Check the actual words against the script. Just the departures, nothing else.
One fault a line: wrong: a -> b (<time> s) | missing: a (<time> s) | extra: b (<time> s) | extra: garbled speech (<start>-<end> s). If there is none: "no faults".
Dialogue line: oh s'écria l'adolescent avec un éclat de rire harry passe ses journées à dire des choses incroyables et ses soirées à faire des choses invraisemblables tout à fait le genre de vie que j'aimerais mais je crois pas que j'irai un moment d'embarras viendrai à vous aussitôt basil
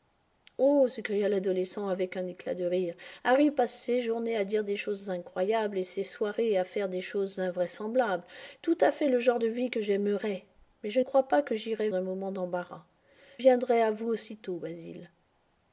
no faults